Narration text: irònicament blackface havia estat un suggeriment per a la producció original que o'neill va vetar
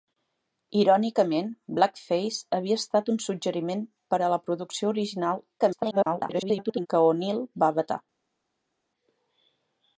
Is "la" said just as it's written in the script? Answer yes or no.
yes